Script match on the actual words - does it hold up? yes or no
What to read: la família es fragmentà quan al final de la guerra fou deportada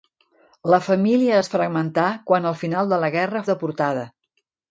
no